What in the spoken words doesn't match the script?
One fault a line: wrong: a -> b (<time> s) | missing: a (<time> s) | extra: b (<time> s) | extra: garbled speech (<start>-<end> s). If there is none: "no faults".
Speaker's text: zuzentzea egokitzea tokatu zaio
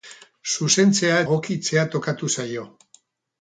no faults